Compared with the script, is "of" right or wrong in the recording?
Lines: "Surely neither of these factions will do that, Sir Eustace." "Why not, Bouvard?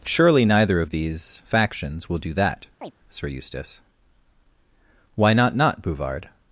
right